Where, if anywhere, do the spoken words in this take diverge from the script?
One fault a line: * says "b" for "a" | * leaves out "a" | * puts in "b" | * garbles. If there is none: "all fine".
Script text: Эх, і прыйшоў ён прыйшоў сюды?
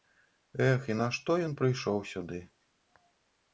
* says "нашто" for "прыйшоў"